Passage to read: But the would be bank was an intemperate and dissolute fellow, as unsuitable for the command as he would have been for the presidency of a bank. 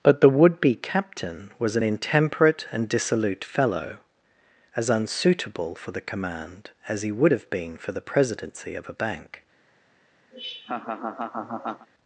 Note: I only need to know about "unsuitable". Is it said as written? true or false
true